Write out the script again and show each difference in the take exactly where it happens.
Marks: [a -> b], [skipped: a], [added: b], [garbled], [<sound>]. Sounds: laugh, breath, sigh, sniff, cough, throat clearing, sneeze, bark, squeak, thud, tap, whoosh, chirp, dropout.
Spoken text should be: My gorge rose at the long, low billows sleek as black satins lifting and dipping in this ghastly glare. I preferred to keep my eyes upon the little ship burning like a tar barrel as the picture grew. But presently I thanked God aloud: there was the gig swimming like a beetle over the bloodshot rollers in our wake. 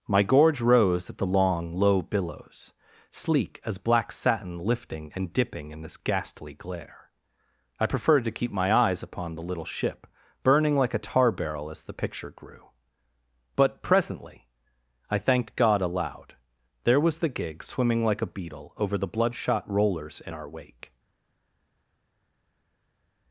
My gorge rose at the long, low billows sleek as black [satins -> satin] lifting and dipping in this ghastly glare. I preferred to keep my eyes upon the little ship burning like a tar barrel as the picture grew. But presently I thanked God aloud: there was the gig swimming like a beetle over the bloodshot rollers in our wake.